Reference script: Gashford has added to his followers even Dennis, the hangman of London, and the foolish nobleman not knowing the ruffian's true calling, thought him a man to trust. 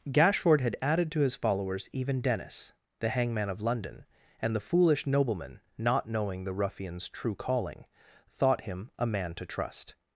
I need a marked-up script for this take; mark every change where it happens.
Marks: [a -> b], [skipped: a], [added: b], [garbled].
Gashford [has -> had] added to his followers even Dennis, the hangman of London, and the foolish nobleman not knowing the ruffian's true calling, thought him a man to trust.